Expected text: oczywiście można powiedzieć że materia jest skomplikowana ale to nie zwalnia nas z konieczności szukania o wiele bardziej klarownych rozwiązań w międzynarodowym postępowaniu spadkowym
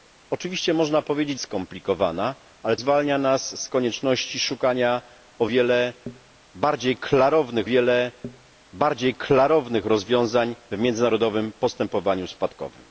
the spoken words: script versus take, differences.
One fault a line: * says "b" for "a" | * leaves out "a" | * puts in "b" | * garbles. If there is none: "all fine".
* leaves out "że materia jest"
* leaves out "to nie"
* puts in "wiele bardziej klarownych"